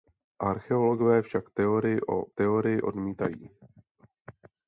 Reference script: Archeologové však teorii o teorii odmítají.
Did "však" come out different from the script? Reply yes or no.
no